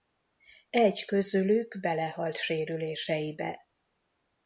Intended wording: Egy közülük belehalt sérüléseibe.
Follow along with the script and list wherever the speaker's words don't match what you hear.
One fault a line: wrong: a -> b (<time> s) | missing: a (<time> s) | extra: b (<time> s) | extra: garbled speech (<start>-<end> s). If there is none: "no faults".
no faults